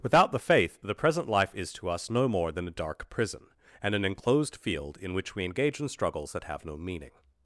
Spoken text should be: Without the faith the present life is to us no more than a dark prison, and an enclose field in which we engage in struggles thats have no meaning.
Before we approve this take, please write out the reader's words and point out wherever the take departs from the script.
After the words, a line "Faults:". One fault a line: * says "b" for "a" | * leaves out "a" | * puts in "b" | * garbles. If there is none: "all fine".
Without the faith the present life is to us no more than a dark prison, and an enclosed field in which we engage in struggles that have no meaning.
Faults:
* says "enclosed" for "enclose"
* says "that" for "thats"